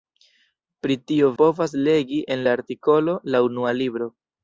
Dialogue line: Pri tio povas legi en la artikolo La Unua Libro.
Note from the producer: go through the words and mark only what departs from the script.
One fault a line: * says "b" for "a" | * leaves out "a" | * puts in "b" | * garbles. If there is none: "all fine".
all fine